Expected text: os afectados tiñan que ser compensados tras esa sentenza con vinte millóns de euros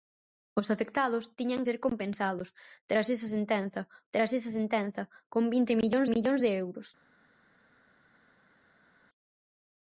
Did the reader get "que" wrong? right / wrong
wrong